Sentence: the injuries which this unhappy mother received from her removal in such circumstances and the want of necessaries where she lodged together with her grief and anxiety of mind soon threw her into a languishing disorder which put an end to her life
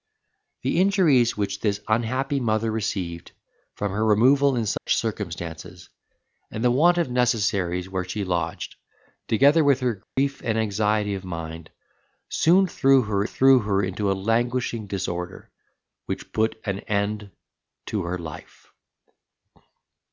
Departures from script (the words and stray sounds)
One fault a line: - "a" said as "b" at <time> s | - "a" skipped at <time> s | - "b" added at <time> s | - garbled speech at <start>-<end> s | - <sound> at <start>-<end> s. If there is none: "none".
- dropout at 4.8-4.9 s
- dropout at 10.0-10.2 s
- "threw her" added at 13.2 s